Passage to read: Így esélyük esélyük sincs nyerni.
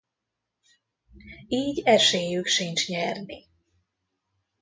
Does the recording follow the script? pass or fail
fail